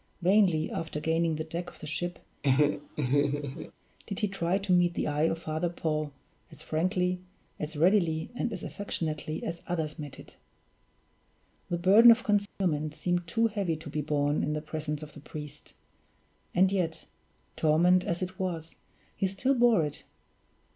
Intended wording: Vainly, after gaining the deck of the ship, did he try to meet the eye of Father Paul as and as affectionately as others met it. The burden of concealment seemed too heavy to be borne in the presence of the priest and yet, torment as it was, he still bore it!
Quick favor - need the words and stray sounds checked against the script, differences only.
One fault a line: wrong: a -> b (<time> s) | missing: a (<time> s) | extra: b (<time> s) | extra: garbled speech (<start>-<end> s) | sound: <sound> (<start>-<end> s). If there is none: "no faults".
sound: laugh (2.4-3.7 s)
extra: frankly as readily (6.6 s)
sound: dropout (12.5-12.6 s)